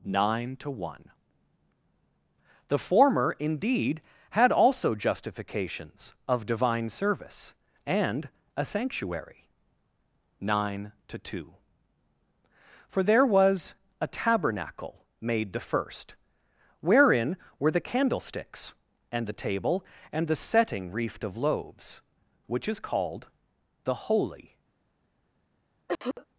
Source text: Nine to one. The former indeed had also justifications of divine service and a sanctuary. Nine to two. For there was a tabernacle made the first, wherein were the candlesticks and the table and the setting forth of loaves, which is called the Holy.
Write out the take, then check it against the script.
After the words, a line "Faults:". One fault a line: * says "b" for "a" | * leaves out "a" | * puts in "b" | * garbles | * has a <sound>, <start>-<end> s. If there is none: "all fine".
Nine to one. The former indeed had also justifications of divine service and a sanctuary. Nine to two. For there was a tabernacle made the first, wherein were the candlesticks and the table and the setting reefed of loaves, which is called the Holy.
Faults:
* says "reefed" for "forth"
* has a cough, 25.9-26.3 s